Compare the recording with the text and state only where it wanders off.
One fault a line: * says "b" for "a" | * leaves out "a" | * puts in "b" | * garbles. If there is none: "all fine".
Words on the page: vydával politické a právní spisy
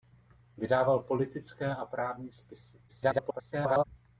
* garbles